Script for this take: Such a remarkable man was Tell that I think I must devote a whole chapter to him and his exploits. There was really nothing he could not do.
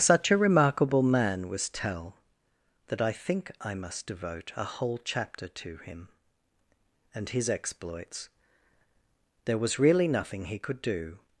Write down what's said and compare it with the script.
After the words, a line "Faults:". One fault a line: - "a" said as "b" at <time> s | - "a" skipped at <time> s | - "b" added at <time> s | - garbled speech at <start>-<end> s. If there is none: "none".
Such a remarkable man was Tell that I think I must devote a whole chapter to him and his exploits. There was really nothing he could do.
Faults:
- "not" skipped at 10.8 s